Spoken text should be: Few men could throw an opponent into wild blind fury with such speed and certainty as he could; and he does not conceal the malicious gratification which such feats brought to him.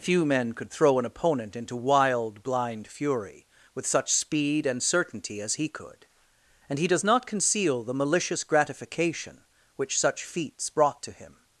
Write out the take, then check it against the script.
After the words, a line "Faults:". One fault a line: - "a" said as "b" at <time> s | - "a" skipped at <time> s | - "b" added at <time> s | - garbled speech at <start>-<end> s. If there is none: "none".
Few men could throw an opponent into wild blind fury with such speed and certainty as he could; and he does not conceal the malicious gratification which such feats brought to him.
Faults:
none